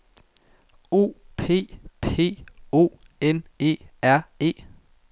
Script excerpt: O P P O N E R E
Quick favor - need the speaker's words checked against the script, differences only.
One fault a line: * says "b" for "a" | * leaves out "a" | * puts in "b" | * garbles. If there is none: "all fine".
all fine